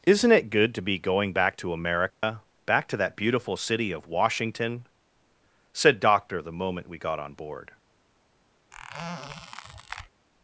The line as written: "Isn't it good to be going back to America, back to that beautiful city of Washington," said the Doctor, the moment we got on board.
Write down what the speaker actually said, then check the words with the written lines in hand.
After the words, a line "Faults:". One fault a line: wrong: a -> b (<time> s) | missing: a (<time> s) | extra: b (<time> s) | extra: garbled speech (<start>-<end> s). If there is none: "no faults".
"Isn't it good to be going back to America, back to that beautiful city of Washington," said Doctor, the moment we got on board.
Faults:
missing: the (6.0 s)